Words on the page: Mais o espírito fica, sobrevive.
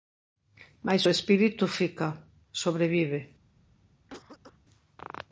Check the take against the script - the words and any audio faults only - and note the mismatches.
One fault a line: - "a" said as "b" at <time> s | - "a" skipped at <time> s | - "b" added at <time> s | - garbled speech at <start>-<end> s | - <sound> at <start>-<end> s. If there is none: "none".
- cough at 4.1-4.6 s